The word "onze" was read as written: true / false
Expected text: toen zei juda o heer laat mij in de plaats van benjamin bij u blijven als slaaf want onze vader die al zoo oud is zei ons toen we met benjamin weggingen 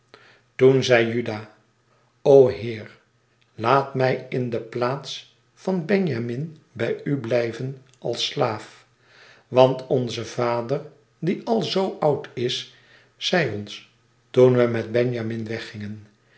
true